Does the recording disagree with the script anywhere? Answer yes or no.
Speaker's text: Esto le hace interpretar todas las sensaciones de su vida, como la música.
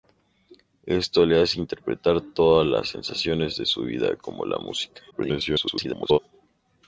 yes